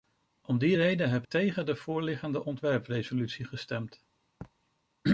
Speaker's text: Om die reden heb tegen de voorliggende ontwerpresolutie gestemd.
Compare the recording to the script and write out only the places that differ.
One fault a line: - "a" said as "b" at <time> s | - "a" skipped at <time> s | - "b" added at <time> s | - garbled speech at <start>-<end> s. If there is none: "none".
none